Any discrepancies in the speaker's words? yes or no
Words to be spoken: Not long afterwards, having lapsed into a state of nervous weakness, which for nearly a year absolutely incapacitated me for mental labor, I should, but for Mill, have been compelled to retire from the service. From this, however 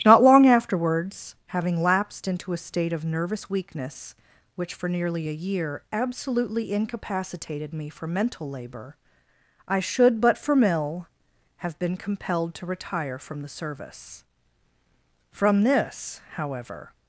no